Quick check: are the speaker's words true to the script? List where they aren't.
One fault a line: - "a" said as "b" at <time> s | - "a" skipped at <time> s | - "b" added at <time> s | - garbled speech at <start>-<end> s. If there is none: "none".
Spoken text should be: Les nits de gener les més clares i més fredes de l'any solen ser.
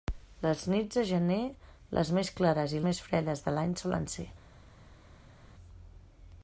none